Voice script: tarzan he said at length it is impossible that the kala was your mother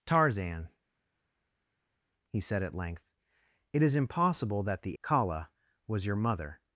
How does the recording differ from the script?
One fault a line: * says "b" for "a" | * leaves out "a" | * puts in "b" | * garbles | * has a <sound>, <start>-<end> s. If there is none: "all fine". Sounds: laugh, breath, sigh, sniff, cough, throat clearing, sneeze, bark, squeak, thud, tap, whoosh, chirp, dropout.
all fine